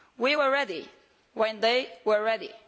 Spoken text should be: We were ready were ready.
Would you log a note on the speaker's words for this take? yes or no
yes